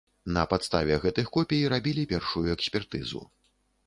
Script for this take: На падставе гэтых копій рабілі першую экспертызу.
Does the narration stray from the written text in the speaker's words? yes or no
no